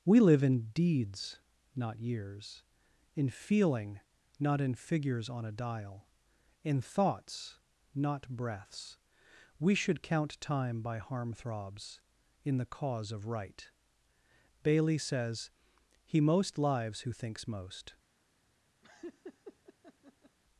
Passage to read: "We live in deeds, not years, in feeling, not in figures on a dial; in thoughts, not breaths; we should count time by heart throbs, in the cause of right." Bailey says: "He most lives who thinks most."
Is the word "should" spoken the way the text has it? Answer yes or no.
yes